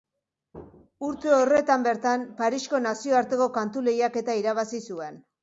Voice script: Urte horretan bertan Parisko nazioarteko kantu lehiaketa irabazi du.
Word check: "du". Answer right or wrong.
wrong